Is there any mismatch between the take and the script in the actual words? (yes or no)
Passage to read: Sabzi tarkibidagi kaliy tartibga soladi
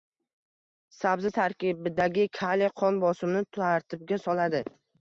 yes